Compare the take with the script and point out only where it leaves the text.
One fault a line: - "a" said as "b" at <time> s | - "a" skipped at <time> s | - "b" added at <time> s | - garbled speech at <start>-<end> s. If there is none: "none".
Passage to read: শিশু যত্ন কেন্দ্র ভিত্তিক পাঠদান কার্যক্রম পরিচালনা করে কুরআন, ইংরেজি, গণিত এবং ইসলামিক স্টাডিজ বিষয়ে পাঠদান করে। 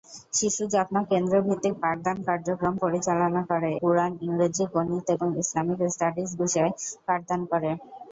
none